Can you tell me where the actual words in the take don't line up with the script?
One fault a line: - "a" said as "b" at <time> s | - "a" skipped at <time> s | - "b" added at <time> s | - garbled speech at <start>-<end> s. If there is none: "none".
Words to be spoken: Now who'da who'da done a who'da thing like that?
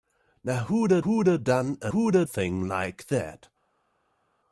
none